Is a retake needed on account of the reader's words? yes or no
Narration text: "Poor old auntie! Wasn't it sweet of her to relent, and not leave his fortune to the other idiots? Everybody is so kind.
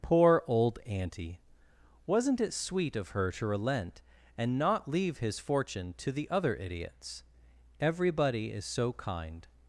no